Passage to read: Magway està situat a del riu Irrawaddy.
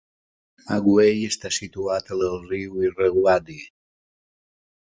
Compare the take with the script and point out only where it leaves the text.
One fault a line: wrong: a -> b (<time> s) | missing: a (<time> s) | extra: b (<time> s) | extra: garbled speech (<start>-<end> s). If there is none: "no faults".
no faults